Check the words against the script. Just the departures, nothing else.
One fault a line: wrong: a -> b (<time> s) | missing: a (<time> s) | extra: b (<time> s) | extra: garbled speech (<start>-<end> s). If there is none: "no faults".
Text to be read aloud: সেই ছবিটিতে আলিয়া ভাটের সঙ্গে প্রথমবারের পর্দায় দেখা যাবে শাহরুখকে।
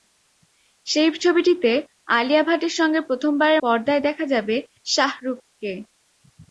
no faults